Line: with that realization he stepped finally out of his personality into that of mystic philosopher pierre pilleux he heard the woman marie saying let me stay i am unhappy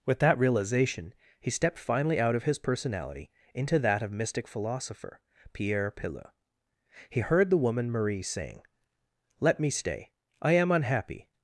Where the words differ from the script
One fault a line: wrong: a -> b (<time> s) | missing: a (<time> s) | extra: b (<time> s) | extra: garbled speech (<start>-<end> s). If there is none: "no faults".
no faults